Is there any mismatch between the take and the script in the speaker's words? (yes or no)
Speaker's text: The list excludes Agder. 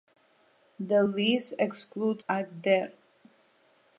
no